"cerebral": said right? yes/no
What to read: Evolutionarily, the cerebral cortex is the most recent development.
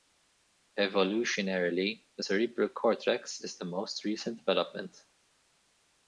yes